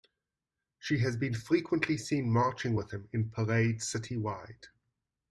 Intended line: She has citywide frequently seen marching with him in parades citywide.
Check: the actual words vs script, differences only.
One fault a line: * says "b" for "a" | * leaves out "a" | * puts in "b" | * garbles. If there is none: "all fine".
* says "been" for "citywide"